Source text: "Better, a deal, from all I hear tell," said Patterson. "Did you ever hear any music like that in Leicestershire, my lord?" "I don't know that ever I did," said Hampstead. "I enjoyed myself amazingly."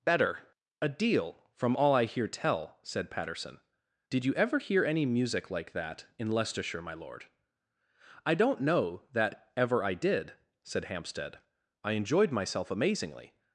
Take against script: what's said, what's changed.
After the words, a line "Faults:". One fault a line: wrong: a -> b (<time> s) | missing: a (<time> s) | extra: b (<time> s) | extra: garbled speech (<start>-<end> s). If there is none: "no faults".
"Better, a deal, from all I hear tell," said Patterson. "Did you ever hear any music like that in Leicestershire, my lord?" "I don't know that ever I did," said Hampstead. "I enjoyed myself amazingly."
Faults:
no faults